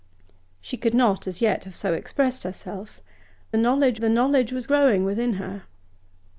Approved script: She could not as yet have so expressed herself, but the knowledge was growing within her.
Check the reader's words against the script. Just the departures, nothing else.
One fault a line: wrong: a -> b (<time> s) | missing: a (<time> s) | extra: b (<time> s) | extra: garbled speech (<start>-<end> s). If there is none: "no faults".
wrong: but -> knowledge (3.6 s)